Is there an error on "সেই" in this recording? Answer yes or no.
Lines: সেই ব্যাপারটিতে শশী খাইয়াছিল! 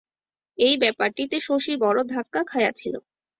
yes